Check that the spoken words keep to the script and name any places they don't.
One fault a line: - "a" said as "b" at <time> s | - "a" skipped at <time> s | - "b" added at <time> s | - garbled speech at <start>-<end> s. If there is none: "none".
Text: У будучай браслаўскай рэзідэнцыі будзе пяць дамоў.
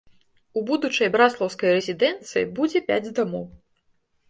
none